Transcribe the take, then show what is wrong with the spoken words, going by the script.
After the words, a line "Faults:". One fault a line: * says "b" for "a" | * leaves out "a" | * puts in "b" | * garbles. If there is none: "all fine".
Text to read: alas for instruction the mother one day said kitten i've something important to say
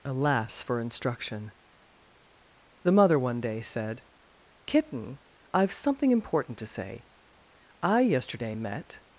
alas for instruction the mother one day said kitten i've something important to say i yesterday met
Faults:
* puts in "i yesterday met"